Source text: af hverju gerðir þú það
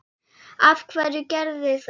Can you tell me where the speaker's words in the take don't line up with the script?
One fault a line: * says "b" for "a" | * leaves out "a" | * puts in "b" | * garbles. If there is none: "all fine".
* leaves out "þú"